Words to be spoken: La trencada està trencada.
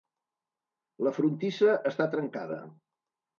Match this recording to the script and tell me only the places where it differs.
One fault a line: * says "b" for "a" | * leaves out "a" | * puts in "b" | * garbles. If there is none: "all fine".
* says "frontissa" for "trencada"